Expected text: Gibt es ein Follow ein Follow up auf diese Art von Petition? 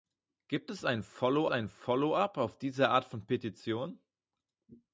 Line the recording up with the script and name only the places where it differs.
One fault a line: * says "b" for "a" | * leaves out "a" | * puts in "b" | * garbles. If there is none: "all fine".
all fine